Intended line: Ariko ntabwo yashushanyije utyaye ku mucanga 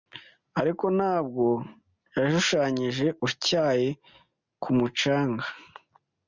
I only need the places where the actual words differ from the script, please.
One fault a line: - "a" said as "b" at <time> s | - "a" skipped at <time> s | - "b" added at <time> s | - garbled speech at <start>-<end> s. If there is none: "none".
none